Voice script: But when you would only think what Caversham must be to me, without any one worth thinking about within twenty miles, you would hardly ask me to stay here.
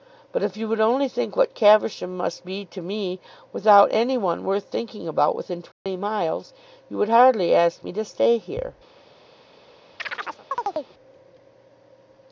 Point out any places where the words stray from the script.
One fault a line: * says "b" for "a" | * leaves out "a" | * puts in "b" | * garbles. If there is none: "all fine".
* says "if" for "when"